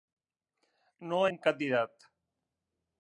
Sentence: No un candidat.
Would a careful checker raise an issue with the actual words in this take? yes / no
no